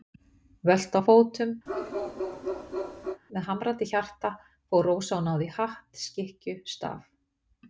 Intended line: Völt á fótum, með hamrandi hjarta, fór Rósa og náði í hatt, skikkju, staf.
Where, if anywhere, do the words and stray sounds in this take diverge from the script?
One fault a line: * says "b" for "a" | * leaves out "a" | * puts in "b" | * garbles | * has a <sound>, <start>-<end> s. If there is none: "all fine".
* has a bark, 1.7-3.2 s